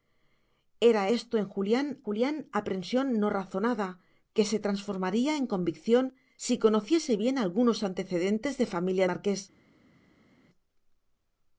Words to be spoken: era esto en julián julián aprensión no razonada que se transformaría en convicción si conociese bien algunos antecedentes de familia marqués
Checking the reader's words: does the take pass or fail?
pass